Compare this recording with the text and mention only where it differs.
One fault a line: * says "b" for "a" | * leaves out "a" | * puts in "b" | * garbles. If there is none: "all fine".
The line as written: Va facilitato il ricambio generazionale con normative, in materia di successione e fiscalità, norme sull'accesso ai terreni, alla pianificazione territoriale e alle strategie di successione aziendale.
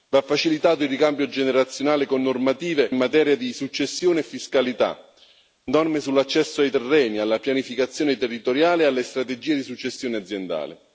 all fine